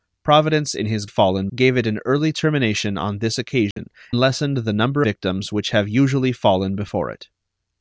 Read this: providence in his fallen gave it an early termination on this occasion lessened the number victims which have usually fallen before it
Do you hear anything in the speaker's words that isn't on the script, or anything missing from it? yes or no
no